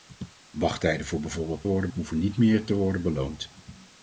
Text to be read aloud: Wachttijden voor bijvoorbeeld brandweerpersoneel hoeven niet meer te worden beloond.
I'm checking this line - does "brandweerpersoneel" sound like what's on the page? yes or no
no